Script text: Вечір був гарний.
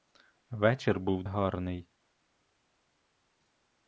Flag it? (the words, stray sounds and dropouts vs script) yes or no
no